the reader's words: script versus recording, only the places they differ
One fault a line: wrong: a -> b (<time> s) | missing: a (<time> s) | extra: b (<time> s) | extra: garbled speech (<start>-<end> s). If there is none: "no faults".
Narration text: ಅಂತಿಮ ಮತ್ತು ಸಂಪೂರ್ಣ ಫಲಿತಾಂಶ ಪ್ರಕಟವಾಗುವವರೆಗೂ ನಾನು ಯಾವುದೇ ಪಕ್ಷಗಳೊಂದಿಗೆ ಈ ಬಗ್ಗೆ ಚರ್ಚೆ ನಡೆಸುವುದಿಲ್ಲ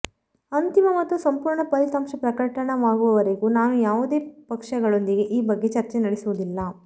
no faults